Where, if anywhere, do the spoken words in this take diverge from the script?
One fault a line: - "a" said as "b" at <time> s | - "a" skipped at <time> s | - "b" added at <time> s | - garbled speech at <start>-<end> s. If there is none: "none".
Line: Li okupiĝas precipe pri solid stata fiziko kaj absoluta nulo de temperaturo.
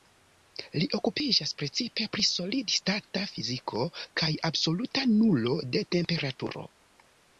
none